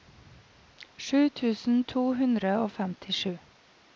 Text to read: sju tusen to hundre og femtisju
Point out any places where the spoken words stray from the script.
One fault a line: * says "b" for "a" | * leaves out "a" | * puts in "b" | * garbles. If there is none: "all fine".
all fine